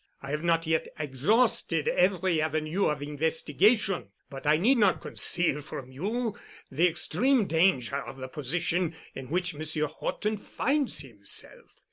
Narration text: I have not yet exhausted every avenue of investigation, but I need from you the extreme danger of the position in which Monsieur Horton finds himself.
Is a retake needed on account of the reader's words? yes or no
yes